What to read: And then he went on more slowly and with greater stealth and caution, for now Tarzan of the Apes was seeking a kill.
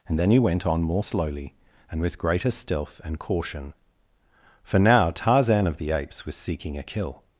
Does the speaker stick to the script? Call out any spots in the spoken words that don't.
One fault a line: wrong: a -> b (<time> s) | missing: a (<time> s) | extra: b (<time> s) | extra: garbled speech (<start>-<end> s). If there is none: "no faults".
no faults